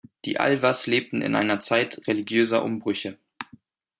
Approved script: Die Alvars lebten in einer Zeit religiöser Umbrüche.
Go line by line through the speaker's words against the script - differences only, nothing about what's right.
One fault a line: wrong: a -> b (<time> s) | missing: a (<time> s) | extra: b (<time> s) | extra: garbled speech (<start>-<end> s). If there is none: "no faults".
no faults